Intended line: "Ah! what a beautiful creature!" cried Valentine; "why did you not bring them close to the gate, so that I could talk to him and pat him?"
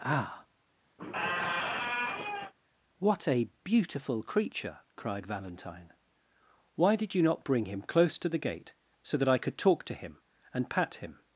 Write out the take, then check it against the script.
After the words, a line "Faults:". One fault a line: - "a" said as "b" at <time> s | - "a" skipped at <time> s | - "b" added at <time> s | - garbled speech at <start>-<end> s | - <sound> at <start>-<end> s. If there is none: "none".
"Ah! what a beautiful creature!" cried Valentine; "why did you not bring him close to the gate, so that I could talk to him and pat him?"
Faults:
- squeak at 1.0-2.5 s
- "them" said as "him" at 7.7 s